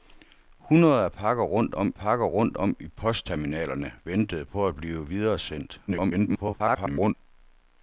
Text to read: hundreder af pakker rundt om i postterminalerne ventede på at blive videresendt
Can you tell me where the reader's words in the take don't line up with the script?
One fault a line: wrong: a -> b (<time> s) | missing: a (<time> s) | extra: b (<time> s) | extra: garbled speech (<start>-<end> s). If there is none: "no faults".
extra: pakker rundt om (1.9 s)
extra: garbled speech (5.9-7.1 s)